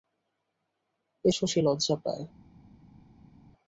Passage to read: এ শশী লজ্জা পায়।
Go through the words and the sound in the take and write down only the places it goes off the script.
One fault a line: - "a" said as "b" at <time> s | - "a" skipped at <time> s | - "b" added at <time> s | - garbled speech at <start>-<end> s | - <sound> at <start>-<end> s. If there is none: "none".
none